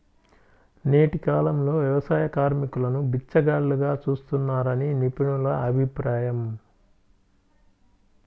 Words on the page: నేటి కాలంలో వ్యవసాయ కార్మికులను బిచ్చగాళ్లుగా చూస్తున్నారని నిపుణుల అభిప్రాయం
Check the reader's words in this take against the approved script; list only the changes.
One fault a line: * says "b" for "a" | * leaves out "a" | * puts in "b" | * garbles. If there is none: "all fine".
all fine